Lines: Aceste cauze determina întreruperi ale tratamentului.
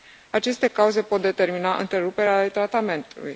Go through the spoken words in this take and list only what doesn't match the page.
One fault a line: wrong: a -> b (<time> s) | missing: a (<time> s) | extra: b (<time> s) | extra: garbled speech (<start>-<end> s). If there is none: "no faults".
extra: pot (1.0 s)